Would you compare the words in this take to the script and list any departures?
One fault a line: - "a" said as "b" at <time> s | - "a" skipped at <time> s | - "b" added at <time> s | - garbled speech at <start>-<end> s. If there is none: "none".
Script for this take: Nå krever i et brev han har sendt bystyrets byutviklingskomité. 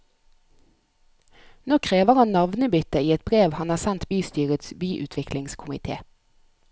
- "han navnebytte" added at 2.2 s